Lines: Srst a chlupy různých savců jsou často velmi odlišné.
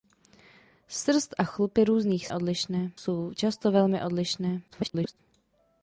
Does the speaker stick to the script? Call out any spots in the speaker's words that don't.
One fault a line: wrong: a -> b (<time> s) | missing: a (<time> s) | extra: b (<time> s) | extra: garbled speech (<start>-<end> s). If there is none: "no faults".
wrong: savců -> odlišné (2.3 s)
extra: garbled speech (4.7-5.2 s)